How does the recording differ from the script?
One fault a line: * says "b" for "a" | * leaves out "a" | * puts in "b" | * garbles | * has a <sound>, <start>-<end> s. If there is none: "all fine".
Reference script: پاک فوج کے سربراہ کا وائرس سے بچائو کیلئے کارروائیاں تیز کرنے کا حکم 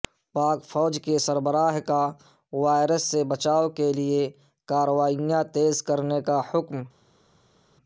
all fine